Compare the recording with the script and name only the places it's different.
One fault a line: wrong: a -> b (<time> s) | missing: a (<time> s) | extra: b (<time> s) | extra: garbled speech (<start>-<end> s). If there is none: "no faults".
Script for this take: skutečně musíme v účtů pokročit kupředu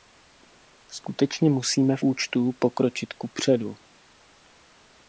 no faults